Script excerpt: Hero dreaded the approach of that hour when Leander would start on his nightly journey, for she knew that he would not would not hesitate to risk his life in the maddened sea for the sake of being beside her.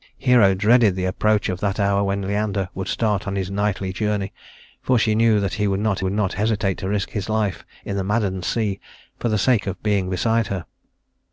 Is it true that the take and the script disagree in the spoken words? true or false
false